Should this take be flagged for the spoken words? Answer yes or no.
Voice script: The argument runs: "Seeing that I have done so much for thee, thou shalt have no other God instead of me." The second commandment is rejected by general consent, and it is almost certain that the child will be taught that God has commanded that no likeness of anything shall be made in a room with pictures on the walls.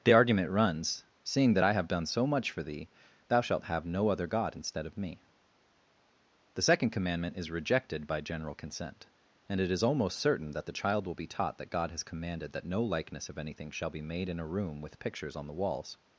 no